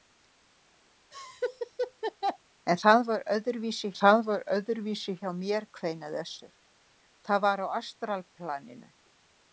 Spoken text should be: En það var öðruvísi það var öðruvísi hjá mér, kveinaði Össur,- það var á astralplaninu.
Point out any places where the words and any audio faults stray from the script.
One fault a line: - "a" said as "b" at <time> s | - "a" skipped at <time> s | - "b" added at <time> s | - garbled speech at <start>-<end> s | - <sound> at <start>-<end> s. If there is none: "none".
- laugh at 1.1-2.4 s